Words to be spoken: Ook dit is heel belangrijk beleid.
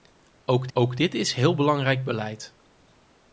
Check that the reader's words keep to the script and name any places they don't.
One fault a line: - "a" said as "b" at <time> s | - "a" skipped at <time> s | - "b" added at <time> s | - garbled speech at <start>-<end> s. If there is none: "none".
- "ook" added at 0.7 s